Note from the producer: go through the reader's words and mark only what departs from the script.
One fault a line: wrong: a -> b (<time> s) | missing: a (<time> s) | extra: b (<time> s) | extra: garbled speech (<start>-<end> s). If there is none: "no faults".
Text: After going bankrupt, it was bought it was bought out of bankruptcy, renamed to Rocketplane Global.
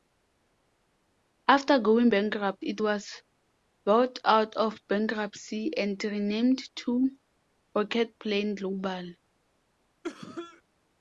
missing: it was bought (4.2 s)
extra: and (5.8 s)